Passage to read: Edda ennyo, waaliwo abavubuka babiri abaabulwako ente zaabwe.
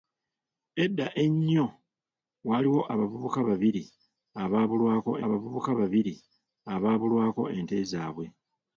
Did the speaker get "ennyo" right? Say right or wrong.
right